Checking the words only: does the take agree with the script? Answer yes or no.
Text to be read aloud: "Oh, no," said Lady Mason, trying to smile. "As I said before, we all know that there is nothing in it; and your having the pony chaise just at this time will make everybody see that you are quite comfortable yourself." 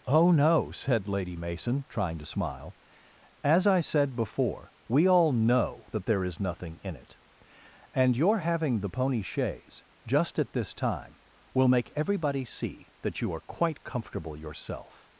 yes